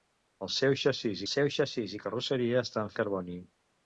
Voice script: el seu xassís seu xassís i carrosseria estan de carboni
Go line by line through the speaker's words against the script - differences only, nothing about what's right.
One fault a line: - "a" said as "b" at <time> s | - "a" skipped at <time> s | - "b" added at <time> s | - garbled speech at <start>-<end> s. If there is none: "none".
none